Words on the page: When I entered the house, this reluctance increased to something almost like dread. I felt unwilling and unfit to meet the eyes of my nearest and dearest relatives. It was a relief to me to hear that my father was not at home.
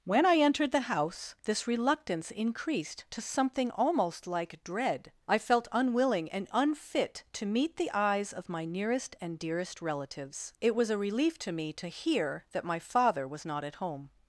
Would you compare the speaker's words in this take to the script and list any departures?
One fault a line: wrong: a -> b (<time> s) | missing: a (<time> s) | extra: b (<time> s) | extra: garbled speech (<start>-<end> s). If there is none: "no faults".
no faults